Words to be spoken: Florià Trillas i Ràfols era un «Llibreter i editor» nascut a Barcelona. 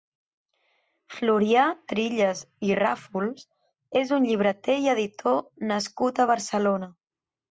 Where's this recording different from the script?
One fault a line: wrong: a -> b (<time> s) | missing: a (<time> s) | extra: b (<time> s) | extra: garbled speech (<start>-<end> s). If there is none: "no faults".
wrong: era -> és (4.0 s)